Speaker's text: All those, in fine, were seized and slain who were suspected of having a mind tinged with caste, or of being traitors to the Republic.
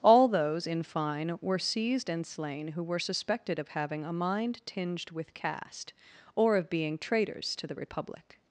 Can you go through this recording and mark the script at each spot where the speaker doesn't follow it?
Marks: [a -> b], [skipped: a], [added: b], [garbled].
All those, in fine, were seized and slain who were suspected of having a mind tinged with caste, or of being traitors to the Republic.